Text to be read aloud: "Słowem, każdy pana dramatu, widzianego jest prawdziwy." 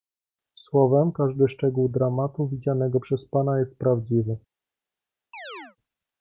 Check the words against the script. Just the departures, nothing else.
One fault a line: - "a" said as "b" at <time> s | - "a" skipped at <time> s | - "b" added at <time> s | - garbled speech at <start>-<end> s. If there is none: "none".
- "pana" said as "szczegół" at 1.5 s
- "przez pana" added at 3.0 s